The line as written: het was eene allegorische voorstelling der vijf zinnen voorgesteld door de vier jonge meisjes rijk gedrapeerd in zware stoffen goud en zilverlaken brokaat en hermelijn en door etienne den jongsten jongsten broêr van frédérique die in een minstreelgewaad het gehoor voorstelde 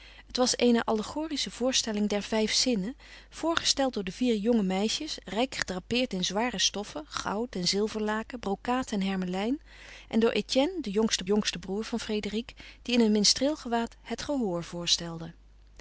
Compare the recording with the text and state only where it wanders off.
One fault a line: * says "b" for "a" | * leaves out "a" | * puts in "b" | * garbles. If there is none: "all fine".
all fine